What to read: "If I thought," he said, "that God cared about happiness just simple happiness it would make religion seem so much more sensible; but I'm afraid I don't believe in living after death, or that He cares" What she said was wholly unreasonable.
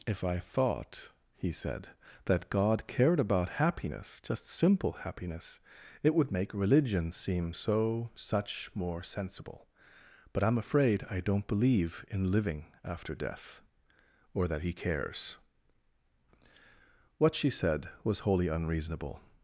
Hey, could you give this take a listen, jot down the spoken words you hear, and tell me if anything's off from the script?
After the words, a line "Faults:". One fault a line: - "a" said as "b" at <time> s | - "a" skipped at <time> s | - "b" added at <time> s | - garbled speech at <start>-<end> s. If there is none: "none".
"If I thought," he said, "that God cared about happiness just simple happiness it would make religion seem so such more sensible; but I'm afraid I don't believe in living after death, or that He cares" What she said was wholly unreasonable.
Faults:
- "much" said as "such" at 8.1 s